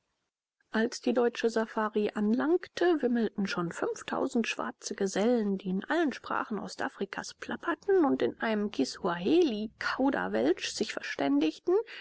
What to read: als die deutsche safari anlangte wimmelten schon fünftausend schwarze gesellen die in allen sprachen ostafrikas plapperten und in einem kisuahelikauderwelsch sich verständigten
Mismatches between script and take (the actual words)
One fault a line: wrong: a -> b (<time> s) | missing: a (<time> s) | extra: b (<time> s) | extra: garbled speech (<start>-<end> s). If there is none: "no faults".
no faults